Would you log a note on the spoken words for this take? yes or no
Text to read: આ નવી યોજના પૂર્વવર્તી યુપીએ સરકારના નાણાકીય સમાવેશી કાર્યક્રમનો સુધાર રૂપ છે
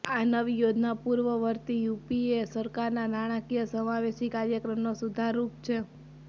no